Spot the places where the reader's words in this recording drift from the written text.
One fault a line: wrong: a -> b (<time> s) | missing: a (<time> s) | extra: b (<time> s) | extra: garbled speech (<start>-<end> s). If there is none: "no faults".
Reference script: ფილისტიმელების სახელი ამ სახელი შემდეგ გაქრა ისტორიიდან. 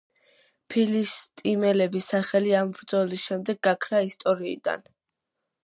wrong: სახელი -> ბრძოლის (2.8 s)